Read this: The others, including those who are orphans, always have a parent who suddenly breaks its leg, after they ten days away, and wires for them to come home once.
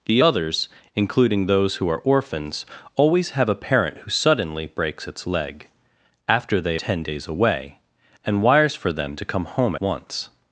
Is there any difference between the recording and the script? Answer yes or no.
no